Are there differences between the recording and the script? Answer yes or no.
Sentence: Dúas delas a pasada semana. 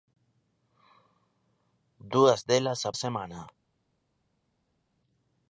yes